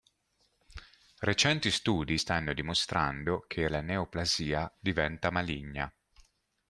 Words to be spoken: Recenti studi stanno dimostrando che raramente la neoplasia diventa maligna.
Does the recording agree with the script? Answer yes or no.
no